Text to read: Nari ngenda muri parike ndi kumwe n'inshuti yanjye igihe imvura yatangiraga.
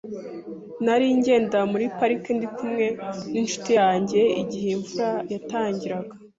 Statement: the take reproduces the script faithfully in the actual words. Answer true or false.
true